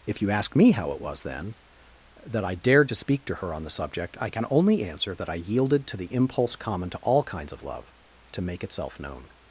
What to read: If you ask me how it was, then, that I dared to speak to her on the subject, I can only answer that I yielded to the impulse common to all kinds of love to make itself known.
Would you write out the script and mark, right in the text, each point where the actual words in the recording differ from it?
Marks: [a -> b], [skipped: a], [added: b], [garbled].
If you ask me how it was, then, that I dared to speak to her on the subject, I can only answer that I yielded to the impulse common to all kinds of love to make itself known.